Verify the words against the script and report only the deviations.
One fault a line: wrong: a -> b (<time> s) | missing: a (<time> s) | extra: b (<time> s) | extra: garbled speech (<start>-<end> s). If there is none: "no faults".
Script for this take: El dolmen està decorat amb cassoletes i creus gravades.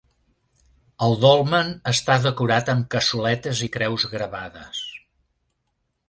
no faults